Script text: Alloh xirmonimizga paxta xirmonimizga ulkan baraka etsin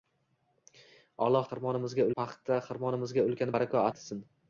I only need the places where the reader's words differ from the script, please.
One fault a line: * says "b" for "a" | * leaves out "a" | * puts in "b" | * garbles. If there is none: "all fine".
all fine